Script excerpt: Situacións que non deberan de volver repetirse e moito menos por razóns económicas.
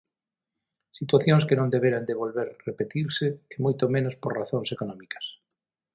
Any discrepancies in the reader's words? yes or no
no